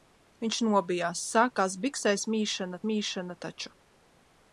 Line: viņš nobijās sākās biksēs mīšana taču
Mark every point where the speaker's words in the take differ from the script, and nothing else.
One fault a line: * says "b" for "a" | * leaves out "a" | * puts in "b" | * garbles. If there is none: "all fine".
* puts in "mīšana"